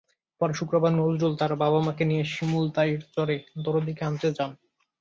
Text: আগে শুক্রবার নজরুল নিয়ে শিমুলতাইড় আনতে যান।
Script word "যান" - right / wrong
right